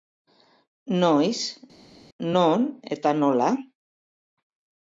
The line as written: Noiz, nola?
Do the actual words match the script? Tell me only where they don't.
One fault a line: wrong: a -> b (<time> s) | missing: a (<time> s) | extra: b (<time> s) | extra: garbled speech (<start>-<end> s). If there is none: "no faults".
extra: non eta (2.4 s)